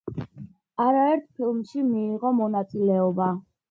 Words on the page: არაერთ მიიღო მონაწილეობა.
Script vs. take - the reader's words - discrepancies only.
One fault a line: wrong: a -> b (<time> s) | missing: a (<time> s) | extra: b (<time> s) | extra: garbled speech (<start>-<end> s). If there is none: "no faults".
extra: ფილმში (1.4 s)